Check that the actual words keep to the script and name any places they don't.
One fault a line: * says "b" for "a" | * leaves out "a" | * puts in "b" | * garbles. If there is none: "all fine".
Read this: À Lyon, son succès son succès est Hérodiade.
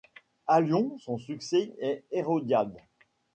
* leaves out "son succès"